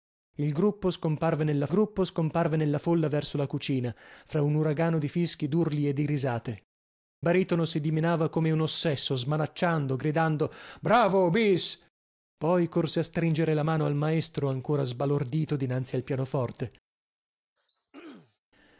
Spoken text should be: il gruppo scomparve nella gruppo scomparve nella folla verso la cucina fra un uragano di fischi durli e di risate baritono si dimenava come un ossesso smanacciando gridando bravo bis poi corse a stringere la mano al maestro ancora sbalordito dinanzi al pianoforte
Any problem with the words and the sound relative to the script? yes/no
yes